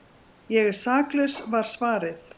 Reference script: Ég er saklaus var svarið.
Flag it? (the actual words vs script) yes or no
no